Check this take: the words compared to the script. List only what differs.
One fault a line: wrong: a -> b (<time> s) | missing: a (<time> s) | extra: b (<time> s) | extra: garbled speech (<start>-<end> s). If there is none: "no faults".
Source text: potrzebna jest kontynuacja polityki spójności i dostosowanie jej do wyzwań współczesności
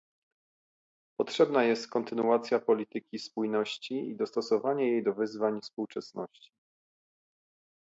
no faults